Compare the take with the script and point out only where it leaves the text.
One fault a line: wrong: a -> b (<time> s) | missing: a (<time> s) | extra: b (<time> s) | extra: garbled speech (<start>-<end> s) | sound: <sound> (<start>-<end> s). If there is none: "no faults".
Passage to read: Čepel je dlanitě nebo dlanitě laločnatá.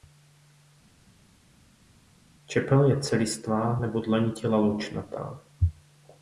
wrong: dlanitě -> celistvá (3.0 s)